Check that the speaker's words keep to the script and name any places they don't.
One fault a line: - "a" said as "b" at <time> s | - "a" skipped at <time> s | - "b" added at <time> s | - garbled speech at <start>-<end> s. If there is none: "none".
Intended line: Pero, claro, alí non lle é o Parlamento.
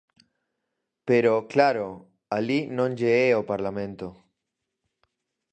none